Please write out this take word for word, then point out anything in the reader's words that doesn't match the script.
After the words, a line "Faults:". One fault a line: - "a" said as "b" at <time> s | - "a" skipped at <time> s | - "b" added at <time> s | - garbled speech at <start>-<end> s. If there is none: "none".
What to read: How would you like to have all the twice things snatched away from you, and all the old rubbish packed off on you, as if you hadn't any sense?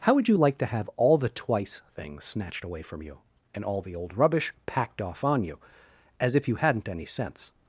How would you like to have all the twice things snatched away from you, and all the old rubbish packed off on you, as if you hadn't any sense?
Faults:
none